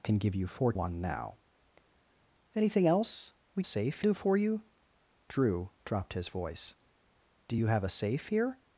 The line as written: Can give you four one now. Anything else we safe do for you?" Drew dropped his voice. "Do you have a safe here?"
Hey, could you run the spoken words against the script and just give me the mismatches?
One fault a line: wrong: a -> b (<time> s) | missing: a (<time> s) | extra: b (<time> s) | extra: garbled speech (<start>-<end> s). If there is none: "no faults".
no faults